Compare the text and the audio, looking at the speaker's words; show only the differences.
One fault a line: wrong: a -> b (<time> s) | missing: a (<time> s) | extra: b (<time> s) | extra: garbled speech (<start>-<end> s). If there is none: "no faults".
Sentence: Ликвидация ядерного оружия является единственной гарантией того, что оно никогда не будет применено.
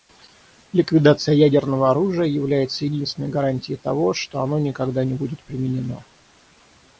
no faults